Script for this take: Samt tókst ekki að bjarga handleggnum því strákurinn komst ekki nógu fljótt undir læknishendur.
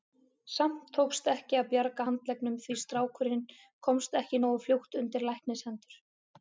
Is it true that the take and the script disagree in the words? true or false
false